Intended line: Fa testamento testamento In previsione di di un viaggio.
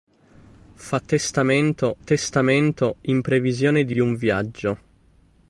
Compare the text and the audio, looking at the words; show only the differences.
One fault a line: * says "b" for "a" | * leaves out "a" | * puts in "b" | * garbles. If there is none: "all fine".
all fine